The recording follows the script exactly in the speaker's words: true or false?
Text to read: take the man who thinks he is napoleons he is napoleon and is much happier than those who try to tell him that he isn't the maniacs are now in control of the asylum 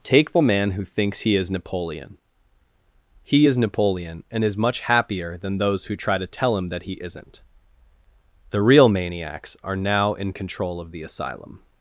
false